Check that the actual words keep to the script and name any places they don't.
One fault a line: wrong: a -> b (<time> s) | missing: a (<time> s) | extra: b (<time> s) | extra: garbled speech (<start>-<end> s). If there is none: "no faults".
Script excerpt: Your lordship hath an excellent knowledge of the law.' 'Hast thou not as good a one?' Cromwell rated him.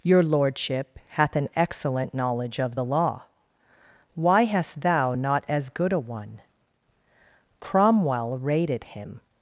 extra: Why (4.1 s)